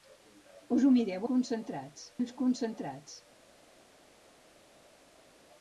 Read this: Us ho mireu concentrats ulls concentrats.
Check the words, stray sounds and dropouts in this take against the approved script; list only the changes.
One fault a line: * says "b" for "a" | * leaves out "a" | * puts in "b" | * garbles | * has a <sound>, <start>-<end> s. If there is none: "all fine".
all fine